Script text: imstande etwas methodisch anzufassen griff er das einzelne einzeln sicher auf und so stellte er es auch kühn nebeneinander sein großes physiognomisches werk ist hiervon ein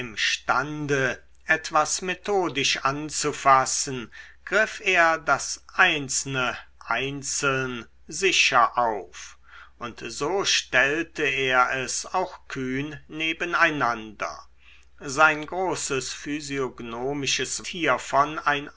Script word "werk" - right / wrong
wrong